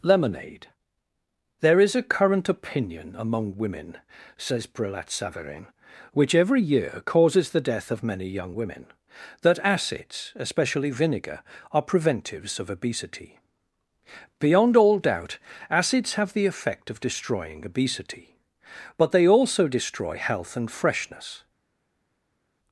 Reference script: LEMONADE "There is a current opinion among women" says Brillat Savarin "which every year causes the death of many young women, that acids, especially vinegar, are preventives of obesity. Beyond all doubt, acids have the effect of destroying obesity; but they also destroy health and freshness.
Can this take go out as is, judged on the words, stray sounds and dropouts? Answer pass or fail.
pass